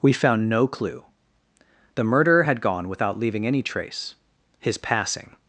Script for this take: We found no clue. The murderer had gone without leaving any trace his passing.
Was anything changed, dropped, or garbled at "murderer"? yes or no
no